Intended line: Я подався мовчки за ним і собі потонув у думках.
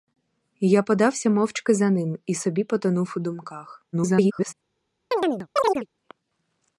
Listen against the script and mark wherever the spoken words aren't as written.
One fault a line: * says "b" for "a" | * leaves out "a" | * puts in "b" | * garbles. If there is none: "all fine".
* garbles